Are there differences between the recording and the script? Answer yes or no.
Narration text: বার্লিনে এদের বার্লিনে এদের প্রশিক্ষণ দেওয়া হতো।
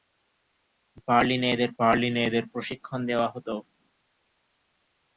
no